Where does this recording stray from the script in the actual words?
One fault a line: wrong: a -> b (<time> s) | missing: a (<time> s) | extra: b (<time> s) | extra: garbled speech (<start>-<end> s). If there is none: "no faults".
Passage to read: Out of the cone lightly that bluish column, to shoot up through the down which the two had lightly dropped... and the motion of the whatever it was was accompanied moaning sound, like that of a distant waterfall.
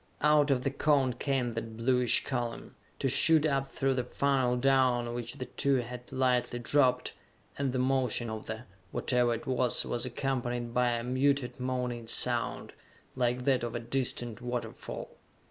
wrong: lightly -> came (1.1 s)
extra: funnel (4.0 s)
extra: by a muted (10.7 s)